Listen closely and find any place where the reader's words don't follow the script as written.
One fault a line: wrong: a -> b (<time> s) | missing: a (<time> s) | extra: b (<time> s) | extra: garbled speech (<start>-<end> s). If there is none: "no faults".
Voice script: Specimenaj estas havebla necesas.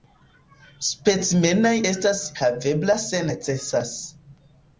extra: se (3.1 s)